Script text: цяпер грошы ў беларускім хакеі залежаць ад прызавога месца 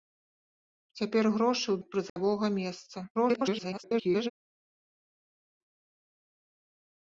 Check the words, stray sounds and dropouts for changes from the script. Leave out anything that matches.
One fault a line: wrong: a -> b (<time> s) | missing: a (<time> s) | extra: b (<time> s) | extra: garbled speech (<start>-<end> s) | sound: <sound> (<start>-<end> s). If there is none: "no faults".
missing: беларускім хакеі залежаць (1.8 s)
sound: dropout (2.1-2.2 s)
extra: garbled speech (3.1-4.3 s)